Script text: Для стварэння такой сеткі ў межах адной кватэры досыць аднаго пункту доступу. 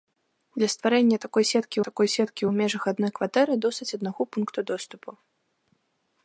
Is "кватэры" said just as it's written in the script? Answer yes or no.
yes